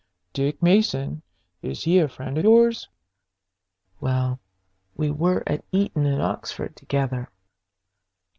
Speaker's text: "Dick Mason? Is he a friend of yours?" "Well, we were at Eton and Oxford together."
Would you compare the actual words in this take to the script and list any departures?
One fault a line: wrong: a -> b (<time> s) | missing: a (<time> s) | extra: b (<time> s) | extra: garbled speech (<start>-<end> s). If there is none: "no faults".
missing: of (2.4 s)